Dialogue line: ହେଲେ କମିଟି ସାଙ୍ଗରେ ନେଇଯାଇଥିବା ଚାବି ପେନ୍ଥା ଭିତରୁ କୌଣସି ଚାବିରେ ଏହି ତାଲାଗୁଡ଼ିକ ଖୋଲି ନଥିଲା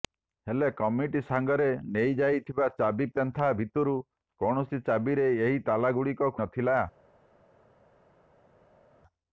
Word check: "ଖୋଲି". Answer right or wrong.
wrong